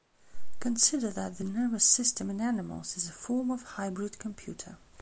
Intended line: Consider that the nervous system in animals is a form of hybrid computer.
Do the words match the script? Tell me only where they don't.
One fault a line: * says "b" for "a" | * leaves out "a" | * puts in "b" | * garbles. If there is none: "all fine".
all fine